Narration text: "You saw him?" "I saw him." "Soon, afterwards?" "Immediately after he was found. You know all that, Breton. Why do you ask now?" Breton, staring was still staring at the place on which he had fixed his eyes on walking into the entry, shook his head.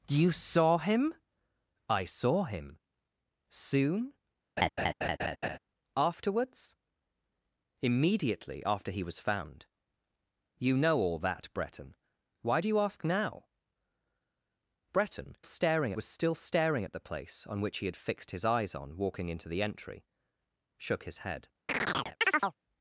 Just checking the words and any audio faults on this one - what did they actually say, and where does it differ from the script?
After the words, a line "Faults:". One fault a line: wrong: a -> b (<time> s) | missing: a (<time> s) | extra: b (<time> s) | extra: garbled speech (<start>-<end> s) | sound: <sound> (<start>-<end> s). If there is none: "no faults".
"You saw him?" "I saw him." "Soon, afterwards?" "Immediately after he was found. You know all that, Breton. Why do you ask now?" Breton, staring was still staring at the place on which he had fixed his eyes on walking into the entry, shook his head.
Faults:
sound: laugh (4.6-5.6 s)
sound: chirp (21.7-22.6 s)